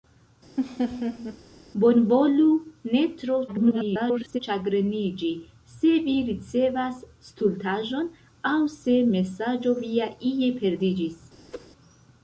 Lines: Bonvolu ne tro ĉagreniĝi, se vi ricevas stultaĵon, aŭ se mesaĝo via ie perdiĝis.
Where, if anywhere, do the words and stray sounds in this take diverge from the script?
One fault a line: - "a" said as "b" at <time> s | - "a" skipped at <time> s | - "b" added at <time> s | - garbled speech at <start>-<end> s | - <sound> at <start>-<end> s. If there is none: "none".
- laugh at 0.6-1.4 s
- garbled speech at 3.5-4.4 s
- whoosh at 11.5-11.7 s